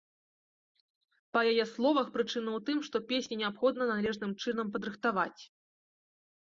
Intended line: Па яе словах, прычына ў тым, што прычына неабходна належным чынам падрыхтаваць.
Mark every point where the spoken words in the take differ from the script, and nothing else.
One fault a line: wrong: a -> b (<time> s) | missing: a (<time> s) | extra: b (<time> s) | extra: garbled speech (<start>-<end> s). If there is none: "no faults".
wrong: прычына -> песні (3.1 s)